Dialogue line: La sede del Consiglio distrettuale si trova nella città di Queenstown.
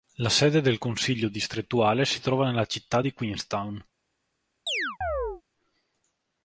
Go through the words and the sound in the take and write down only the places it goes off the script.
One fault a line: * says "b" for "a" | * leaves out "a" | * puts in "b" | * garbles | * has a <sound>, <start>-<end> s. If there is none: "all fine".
* has a chirp, 4.7-5.4 s